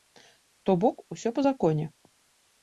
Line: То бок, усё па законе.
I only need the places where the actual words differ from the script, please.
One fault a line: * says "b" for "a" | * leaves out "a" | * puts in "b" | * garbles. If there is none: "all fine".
all fine